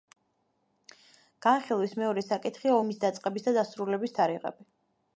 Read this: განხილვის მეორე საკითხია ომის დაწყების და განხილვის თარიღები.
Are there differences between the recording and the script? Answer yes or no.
yes